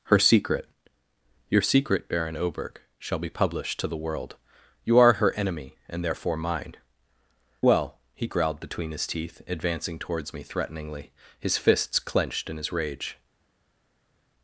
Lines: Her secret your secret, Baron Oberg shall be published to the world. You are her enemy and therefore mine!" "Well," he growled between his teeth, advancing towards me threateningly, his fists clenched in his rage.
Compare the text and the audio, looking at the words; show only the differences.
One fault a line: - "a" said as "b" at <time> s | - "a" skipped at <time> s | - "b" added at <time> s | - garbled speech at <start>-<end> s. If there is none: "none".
none